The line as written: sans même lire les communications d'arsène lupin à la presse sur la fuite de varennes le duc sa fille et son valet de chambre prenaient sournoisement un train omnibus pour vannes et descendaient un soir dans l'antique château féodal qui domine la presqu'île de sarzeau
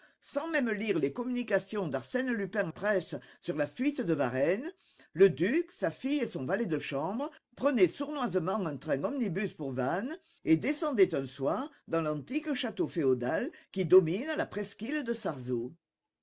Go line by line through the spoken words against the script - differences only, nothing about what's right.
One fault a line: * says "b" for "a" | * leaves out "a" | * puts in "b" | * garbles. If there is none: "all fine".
* leaves out "la"